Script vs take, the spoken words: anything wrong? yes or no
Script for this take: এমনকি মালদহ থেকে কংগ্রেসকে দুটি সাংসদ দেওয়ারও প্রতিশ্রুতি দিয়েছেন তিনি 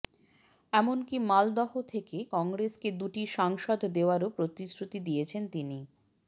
no